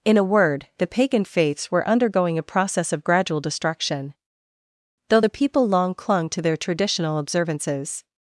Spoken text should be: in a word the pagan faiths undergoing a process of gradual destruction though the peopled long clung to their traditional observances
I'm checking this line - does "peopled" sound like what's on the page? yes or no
no